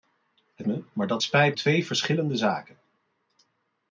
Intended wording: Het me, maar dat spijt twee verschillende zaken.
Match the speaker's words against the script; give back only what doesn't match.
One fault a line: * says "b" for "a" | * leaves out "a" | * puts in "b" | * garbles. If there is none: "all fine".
all fine